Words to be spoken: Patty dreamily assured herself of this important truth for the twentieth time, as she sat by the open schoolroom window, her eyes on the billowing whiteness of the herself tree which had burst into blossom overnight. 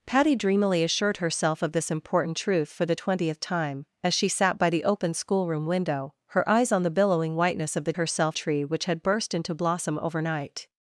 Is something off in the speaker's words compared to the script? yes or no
no